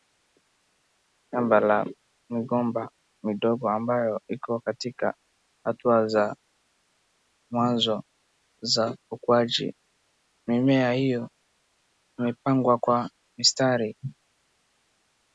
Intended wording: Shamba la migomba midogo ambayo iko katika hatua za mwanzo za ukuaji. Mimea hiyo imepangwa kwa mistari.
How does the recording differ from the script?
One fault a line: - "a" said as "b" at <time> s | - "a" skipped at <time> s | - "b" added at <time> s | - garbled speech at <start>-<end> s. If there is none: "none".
none